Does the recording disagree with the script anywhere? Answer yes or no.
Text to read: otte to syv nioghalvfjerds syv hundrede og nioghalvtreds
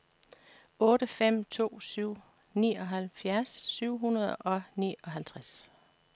yes